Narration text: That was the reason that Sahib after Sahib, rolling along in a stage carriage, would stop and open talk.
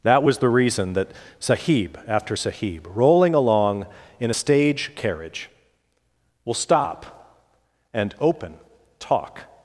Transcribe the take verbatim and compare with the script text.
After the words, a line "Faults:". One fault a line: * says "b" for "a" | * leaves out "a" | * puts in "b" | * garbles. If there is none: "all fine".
That was the reason that Sahib after Sahib, rolling along in a stage carriage, will stop and open talk.
Faults:
* says "will" for "would"